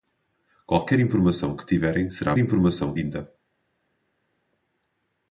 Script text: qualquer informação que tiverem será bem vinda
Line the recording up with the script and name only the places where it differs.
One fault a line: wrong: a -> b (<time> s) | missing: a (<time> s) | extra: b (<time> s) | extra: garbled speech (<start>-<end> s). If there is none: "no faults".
wrong: bem -> informação (2.4 s)